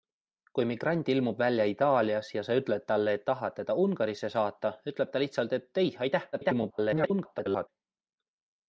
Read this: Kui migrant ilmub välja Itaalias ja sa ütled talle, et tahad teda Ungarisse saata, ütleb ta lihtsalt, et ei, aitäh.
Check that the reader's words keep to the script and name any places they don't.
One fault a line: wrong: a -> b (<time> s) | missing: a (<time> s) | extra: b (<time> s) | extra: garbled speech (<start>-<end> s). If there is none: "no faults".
extra: garbled speech (6.3-7.7 s)